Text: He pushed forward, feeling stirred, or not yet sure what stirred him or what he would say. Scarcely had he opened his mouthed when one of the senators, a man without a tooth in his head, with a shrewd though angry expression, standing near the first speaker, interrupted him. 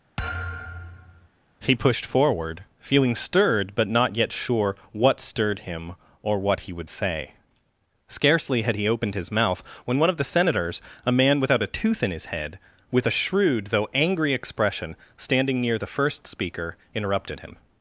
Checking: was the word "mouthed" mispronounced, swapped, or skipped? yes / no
yes